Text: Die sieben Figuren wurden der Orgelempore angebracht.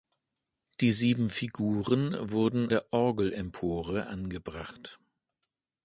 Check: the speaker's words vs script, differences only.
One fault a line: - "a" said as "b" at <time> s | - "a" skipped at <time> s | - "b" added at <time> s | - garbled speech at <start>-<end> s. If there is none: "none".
none